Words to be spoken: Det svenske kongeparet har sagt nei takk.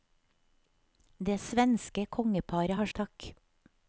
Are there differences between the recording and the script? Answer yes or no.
yes